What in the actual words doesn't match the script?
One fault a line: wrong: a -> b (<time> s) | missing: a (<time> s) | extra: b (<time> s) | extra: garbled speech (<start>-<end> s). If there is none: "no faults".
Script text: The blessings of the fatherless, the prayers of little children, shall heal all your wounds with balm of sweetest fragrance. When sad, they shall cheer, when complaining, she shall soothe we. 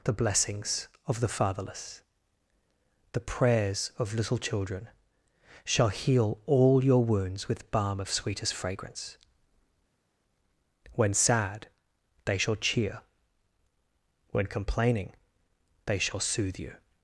wrong: she -> they (15.9 s)
wrong: we -> you (16.6 s)